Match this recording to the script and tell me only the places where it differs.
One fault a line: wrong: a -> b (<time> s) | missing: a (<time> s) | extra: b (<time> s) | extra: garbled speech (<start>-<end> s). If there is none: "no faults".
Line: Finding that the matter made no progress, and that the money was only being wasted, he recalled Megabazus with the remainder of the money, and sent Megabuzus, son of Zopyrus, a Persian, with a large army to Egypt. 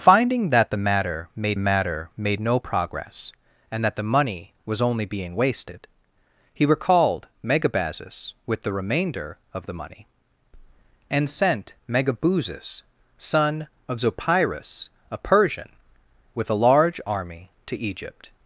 extra: matter made (1.6 s)